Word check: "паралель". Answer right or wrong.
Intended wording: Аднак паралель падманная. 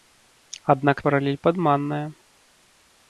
right